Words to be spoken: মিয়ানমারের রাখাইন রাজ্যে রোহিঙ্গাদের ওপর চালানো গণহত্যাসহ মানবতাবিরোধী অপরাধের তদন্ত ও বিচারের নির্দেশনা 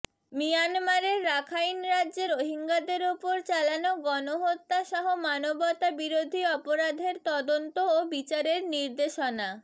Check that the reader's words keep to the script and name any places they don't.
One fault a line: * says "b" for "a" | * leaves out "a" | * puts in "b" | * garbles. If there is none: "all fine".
all fine